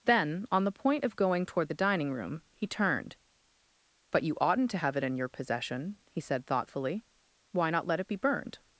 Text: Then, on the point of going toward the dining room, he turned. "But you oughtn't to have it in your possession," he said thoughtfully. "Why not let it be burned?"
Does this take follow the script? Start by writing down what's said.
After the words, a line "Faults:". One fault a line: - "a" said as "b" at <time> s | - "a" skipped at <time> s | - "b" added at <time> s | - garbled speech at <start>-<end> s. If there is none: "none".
Then, on the point of going toward the dining room, he turned. "But you oughtn't to have it in your possession," he said thoughtfully. "Why not let it be burned?"
Faults:
none